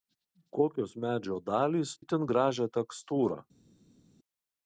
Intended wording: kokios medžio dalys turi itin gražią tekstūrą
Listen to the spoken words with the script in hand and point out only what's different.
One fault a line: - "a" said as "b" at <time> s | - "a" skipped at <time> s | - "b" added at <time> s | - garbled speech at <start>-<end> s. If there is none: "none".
- "turi" skipped at 1.9 s